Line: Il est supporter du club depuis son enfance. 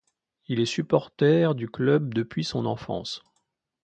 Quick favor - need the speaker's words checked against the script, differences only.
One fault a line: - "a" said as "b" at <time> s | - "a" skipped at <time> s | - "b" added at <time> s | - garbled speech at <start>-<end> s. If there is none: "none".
none